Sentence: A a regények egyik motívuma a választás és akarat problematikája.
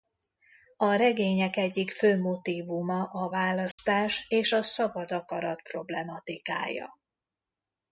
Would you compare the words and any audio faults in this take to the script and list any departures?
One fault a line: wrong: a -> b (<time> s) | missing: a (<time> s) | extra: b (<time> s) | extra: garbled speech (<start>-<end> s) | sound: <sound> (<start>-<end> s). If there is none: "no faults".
missing: a (0.9 s)
extra: fő (1.9 s)
sound: dropout (3.7-3.8 s)
extra: a szabad (4.5 s)